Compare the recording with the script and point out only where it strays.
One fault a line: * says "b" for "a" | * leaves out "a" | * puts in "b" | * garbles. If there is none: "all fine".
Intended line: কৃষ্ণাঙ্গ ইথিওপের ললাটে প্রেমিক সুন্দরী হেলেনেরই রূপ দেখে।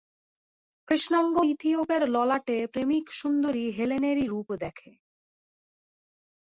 all fine